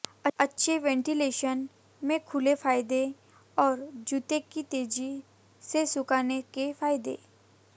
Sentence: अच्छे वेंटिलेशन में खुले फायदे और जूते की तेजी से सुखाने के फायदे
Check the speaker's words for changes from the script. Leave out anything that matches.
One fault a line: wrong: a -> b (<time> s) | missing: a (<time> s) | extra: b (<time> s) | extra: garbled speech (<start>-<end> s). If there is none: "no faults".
no faults